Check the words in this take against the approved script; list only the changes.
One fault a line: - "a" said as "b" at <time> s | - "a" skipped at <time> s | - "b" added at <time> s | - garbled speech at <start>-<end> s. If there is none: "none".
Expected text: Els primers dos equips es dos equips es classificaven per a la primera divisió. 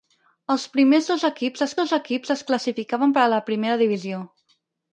none